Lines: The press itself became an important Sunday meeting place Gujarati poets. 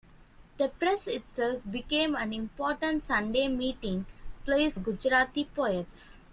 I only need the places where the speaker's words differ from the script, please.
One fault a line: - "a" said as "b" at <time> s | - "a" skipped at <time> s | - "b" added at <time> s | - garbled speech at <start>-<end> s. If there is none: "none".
none